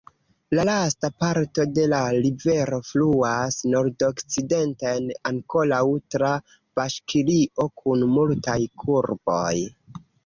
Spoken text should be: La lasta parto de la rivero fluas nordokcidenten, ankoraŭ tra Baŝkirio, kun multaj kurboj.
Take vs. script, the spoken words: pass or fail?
pass